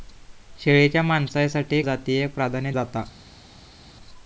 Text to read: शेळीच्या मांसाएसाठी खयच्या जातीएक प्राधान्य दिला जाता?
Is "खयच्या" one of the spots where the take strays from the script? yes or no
yes